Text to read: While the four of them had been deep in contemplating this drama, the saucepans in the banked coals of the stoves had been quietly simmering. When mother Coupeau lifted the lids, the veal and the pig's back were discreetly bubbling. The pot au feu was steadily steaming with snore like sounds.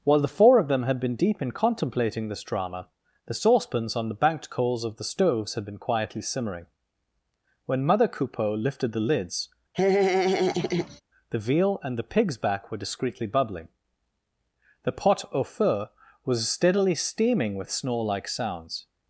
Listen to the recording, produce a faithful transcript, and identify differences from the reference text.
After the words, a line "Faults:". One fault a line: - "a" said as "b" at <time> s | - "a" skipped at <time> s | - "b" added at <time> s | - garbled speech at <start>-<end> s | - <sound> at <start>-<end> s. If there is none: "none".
While the four of them had been deep in contemplating this drama, the saucepans on the banked coals of the stoves had been quietly simmering. When mother Coupeau lifted the lids, the veal and the pig's back were discreetly bubbling. The pot au feu was steadily steaming with snore like sounds.
Faults:
- "in" said as "on" at 4.0 s
- laugh at 9.7-11.0 s